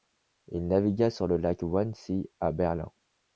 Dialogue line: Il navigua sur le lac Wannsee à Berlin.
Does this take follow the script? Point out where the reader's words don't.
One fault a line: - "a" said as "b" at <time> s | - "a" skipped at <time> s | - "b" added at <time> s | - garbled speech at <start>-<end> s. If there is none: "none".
none